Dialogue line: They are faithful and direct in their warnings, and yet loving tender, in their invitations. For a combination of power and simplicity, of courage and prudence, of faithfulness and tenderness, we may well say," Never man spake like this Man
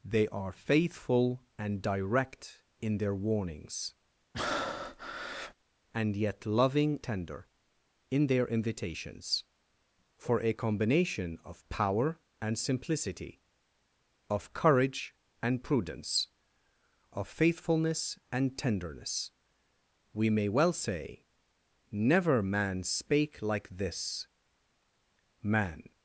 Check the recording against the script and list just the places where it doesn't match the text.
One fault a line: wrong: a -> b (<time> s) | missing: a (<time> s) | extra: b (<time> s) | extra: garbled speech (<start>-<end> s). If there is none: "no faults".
no faults